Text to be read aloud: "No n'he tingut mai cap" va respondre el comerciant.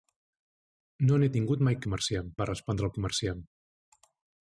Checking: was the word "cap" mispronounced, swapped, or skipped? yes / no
yes